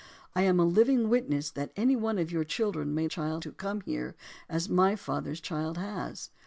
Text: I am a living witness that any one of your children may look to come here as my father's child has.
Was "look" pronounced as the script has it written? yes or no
no